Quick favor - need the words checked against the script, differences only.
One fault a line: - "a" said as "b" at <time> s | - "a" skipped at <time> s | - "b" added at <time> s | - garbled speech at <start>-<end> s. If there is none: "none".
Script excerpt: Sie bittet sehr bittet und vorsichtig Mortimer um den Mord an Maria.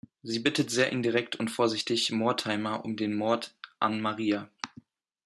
- "bittet" said as "indirekt" at 0.9 s